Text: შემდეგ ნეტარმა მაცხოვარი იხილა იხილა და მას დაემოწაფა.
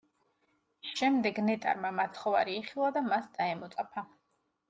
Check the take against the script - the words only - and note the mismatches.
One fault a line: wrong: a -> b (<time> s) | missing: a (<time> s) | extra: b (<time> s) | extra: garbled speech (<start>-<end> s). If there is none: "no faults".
missing: იხილა (2.9 s)